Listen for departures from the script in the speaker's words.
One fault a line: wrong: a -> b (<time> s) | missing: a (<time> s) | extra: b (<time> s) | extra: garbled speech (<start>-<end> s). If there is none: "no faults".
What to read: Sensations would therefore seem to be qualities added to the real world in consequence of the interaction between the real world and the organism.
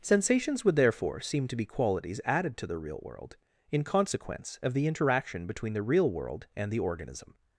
no faults